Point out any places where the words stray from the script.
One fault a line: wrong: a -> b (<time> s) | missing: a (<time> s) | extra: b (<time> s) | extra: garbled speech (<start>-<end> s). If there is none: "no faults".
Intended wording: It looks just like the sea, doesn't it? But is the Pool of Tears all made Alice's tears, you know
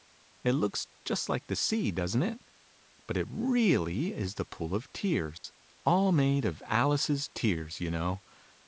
extra: it really (3.2 s)
extra: of (6.4 s)